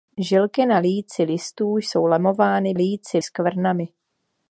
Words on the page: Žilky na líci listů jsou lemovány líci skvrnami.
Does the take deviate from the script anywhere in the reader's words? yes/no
no